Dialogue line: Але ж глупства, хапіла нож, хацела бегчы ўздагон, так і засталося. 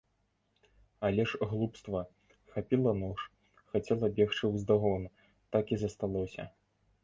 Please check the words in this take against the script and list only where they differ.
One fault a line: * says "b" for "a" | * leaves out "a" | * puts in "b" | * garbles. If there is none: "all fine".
all fine